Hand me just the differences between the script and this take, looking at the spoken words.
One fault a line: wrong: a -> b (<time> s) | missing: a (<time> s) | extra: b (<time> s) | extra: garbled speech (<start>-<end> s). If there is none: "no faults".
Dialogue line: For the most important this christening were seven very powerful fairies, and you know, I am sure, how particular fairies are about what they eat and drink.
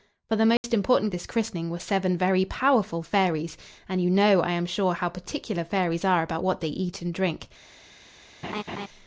no faults